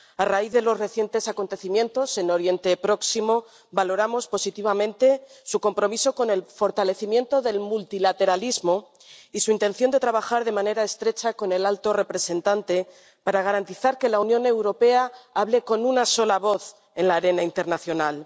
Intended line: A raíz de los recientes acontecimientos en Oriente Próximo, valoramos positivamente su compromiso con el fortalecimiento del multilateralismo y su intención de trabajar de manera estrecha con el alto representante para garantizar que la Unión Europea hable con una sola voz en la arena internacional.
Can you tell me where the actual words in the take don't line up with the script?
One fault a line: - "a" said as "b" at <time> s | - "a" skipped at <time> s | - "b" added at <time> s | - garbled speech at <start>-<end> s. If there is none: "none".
none